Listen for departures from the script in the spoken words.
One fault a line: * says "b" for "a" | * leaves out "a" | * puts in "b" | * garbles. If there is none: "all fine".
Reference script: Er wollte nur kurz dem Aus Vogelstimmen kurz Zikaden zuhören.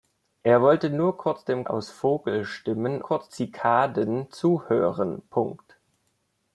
all fine